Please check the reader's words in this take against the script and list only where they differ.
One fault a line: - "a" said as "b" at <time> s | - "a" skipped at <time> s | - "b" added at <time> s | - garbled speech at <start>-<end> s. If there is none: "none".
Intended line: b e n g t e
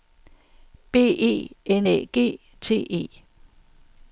- "æ" added at 1.8 s